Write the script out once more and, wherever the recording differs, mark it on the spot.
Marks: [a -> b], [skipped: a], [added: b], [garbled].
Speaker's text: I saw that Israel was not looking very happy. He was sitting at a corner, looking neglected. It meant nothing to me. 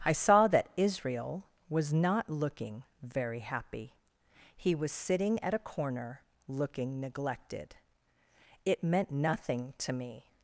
I saw that Israel was not looking very happy. He was sitting at a corner, looking neglected. It meant nothing to me.